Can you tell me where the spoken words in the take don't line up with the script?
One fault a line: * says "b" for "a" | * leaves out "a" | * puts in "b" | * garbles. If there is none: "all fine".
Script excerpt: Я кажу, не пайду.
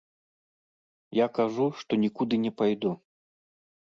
* puts in "што нікуды"